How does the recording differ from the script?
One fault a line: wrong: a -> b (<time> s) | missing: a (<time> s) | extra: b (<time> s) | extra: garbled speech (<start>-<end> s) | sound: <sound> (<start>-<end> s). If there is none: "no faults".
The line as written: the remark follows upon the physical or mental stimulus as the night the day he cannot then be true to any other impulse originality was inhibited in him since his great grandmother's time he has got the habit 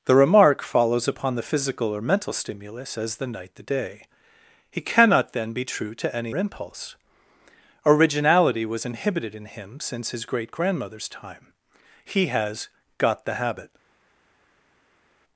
missing: other (6.3 s)